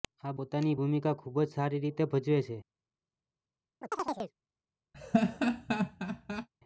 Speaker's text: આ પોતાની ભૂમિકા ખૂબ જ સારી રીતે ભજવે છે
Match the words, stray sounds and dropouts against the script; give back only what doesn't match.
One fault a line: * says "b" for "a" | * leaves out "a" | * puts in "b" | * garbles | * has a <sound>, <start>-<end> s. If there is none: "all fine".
* has a chirp, 3.8-4.3 s
* has a laugh, 4.9-6.5 s